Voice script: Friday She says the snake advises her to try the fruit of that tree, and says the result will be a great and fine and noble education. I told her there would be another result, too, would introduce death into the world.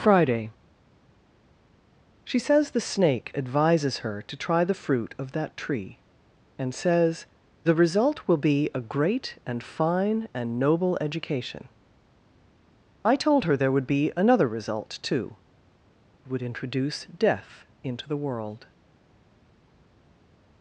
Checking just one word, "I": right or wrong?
right